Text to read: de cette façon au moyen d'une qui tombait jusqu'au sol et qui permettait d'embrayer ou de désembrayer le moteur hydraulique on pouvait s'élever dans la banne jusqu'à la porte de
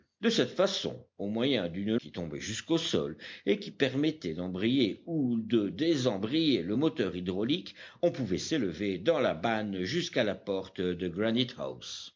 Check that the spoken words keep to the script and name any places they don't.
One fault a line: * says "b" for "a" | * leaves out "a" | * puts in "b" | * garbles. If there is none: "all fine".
all fine